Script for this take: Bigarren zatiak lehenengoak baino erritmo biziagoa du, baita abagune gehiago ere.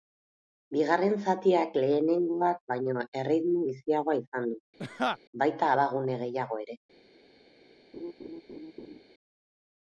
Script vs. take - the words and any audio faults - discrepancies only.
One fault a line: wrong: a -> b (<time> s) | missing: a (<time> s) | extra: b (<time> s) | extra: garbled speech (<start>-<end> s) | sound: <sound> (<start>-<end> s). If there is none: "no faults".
extra: izan (4.2 s)
sound: laugh (4.8-5.2 s)
sound: laugh (7.9-9.0 s)